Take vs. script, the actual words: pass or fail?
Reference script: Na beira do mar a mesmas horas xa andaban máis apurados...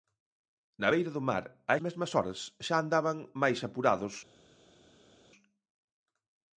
pass